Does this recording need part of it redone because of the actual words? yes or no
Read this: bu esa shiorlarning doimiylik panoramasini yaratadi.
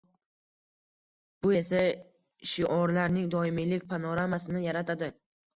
no